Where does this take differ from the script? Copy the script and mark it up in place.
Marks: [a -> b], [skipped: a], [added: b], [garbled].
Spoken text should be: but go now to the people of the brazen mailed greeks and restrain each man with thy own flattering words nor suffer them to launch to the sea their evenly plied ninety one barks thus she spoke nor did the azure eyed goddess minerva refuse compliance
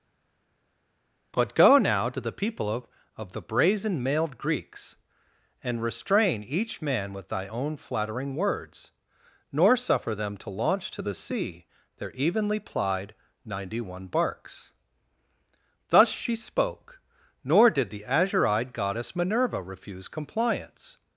but go now to the people of [added: of] the brazen mailed greeks and restrain each man with thy own flattering words nor suffer them to launch to the sea their evenly plied ninety one barks thus she spoke nor did the azure eyed goddess minerva refuse compliance